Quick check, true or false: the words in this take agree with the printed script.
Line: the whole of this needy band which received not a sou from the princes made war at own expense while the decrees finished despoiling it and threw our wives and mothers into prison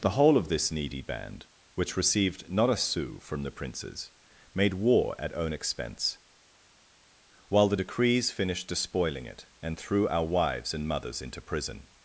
true